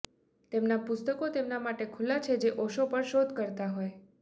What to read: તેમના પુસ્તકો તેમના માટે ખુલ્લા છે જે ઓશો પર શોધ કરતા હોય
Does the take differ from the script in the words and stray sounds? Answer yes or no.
no